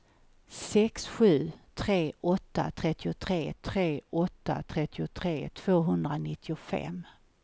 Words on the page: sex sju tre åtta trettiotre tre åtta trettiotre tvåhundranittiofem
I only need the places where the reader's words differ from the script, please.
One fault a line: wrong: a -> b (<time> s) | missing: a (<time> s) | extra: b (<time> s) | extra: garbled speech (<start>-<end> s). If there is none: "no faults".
no faults